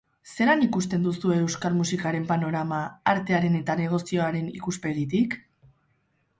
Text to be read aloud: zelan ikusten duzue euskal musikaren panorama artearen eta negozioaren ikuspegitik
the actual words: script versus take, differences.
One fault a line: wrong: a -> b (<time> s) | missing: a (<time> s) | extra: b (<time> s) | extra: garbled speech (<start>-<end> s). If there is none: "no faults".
no faults